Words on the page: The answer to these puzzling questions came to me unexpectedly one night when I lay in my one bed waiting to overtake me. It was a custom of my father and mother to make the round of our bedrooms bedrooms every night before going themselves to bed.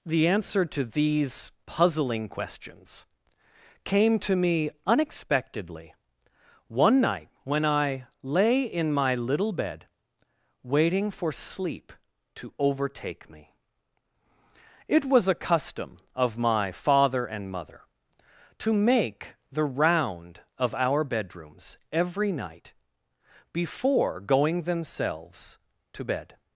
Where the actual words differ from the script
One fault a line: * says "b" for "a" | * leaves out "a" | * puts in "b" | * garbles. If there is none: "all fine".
* says "little" for "one"
* puts in "for sleep"
* leaves out "bedrooms"